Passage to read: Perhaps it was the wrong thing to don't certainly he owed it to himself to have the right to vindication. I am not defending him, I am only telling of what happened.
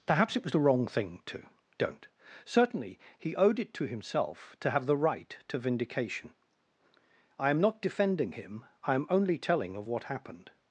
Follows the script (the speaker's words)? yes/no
yes